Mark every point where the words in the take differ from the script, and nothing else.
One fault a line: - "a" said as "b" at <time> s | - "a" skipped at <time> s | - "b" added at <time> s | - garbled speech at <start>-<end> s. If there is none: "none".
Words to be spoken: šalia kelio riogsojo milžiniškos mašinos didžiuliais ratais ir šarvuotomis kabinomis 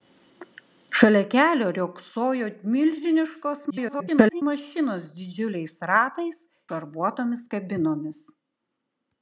- garbled speech at 3.7-4.4 s
- "ir" skipped at 6.4 s